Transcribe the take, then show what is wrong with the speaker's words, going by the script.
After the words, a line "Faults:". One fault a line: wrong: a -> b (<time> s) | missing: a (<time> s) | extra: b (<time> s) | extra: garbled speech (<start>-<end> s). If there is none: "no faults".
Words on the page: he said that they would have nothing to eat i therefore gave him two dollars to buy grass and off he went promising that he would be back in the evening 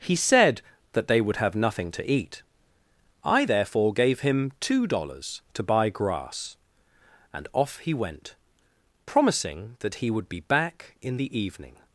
he said that they would have nothing to eat i therefore gave him two dollars to buy grass and off he went promising that he would be back in the evening
Faults:
no faults